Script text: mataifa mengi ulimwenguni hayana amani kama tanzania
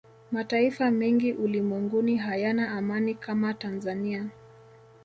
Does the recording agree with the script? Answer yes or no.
yes